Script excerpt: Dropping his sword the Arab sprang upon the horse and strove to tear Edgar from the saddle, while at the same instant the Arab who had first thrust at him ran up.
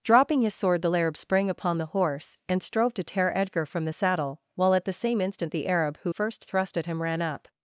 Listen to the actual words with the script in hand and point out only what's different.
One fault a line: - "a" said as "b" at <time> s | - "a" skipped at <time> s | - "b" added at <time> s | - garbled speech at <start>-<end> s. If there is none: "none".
- "had" skipped at 6.1 s